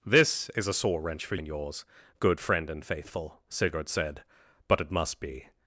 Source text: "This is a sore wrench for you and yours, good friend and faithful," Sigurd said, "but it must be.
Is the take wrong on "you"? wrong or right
wrong